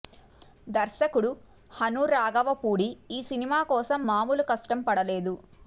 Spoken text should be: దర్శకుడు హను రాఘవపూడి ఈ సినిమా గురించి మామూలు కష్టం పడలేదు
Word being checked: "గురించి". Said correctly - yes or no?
no